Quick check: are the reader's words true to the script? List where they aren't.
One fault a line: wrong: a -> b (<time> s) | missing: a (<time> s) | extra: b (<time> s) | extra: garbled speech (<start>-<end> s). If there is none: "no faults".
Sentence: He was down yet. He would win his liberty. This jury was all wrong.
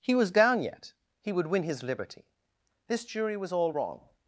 no faults